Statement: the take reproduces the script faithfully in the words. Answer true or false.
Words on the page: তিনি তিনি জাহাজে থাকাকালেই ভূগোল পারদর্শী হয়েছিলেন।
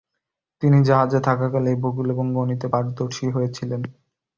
false